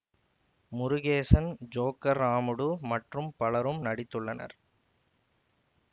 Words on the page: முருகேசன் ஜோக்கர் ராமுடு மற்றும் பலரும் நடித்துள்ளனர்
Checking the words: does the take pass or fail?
pass